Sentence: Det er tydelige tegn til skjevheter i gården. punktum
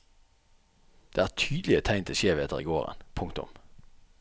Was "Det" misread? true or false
false